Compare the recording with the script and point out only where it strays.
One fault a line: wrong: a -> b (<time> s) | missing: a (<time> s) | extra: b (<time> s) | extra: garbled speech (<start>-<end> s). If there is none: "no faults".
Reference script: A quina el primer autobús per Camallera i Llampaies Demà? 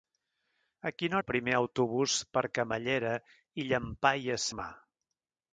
no faults